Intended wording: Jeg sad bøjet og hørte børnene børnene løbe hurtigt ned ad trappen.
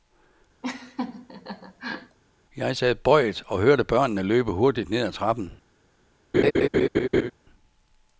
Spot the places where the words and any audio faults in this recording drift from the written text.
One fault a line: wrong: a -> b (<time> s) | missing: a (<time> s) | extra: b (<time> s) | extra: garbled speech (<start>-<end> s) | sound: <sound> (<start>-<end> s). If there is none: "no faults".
sound: laugh (0.6-2.2 s)
missing: børnene (4.2 s)
sound: laugh (6.3-7.3 s)